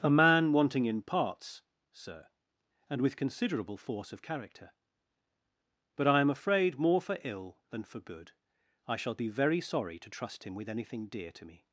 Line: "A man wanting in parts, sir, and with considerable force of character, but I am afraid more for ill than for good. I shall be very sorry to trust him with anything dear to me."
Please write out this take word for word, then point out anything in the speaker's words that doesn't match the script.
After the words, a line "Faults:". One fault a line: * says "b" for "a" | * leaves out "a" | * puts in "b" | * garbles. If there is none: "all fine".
"A man wanting in parts, sir, and with considerable force of character, but I am afraid more for ill than for good. I shall be very sorry to trust him with anything dear to me."
Faults:
all fine